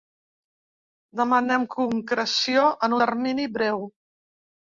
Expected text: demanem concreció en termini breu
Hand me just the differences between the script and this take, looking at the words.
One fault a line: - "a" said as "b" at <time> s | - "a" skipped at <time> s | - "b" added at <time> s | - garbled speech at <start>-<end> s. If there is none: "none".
none